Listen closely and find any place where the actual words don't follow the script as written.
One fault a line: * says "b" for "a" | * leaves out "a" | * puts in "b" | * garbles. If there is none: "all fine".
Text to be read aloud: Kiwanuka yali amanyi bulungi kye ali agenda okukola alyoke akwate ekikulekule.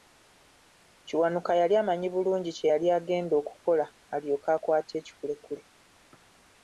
* says "yali" for "ali"